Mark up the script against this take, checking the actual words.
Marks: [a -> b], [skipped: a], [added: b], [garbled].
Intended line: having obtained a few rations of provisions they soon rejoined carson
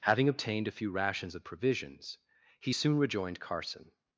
having obtained a few rations of provisions [they -> he] soon rejoined carson